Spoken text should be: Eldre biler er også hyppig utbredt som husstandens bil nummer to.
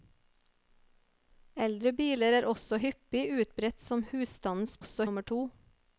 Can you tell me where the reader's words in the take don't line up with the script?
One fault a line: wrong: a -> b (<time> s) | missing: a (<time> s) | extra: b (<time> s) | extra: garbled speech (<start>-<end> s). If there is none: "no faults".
wrong: bil -> også (4.8 s)